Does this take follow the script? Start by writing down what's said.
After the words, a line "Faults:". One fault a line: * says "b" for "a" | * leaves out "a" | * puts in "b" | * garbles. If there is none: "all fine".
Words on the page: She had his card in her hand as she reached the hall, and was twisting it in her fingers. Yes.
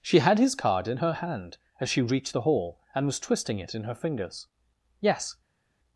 She had his card in her hand as she reached the hall, and was twisting it in her fingers. Yes.
Faults:
all fine